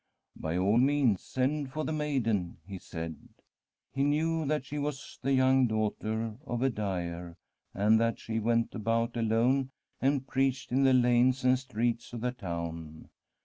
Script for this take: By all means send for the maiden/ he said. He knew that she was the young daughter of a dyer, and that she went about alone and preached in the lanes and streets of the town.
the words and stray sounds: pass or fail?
pass